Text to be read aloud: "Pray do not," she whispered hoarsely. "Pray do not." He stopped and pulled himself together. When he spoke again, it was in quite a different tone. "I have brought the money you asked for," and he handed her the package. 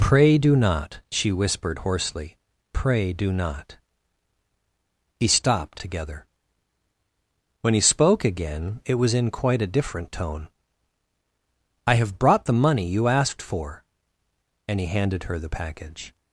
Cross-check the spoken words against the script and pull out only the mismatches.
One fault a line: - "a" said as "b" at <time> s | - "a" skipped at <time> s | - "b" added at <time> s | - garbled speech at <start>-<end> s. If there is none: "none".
- "and pulled himself" skipped at 5.8 s